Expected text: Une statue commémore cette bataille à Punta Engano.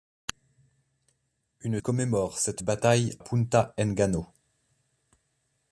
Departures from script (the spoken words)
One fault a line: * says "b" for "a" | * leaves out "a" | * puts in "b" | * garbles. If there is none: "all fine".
* leaves out "statue"
* leaves out "à"